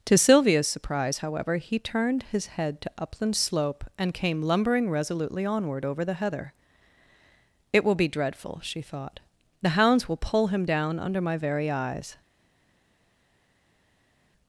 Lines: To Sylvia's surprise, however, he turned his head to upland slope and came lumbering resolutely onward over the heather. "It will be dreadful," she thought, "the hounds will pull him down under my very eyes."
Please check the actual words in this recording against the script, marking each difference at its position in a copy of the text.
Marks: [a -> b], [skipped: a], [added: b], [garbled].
To Sylvia's surprise, however, he turned his head to upland slope and came lumbering resolutely onward over the heather. "It will be dreadful," she thought, "the hounds will pull him down under my very eyes."